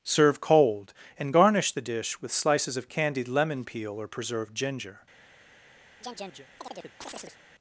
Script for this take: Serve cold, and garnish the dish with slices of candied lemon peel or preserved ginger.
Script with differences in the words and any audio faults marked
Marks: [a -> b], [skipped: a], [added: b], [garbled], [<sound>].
Serve cold, and garnish the dish with slices of candied lemon peel or preserved ginger. [chirp]